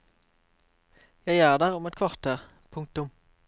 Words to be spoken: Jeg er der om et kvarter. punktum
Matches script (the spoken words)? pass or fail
pass